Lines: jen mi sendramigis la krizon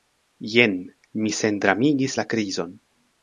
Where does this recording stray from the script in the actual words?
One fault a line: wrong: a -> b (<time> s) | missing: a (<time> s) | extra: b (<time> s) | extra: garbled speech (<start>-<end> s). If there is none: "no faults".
no faults